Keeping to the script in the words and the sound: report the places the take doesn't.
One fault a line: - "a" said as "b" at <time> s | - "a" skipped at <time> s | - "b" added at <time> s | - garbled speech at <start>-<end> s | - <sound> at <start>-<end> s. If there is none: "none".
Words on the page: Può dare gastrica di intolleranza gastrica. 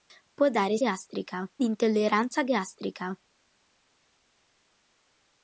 none